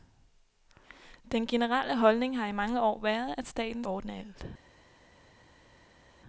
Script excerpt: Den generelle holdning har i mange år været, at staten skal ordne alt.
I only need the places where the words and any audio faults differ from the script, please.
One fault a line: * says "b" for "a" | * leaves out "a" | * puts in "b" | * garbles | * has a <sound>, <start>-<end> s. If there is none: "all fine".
* leaves out "skal"